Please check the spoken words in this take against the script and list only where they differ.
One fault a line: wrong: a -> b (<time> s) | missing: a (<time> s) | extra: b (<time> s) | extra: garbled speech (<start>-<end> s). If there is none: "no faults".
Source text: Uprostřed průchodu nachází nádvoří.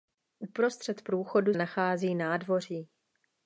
no faults